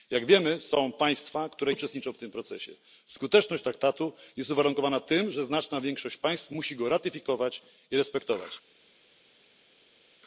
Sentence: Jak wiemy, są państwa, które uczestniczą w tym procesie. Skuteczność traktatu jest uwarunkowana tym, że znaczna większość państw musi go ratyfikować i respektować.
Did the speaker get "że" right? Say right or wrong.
right